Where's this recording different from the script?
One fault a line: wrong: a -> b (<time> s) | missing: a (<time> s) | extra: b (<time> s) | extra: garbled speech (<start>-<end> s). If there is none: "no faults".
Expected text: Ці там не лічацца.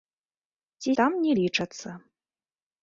no faults